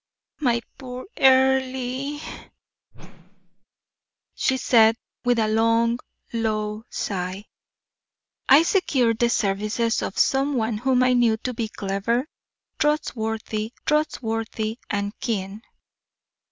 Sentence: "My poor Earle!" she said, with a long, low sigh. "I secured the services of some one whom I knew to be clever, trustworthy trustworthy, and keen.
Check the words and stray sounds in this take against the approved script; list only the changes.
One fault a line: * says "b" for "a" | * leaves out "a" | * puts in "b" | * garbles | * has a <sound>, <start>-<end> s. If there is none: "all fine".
* has a whoosh, 2.9-3.7 s